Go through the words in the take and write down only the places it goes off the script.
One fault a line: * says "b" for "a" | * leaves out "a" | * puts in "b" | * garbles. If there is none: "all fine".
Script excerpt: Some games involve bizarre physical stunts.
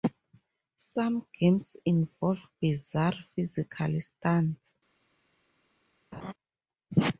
all fine